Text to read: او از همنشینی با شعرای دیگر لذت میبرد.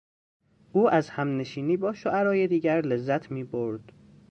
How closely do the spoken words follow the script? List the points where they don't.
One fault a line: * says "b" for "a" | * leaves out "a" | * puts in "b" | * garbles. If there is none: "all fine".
all fine